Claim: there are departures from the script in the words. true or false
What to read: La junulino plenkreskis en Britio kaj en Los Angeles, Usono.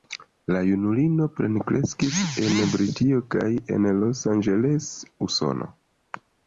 false